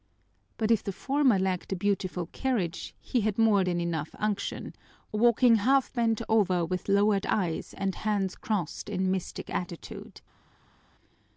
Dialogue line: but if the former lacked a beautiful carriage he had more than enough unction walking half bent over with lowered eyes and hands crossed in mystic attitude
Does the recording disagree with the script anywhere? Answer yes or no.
no